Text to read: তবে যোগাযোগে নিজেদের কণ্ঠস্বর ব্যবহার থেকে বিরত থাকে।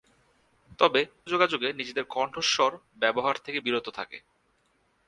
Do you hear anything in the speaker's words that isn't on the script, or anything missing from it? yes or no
no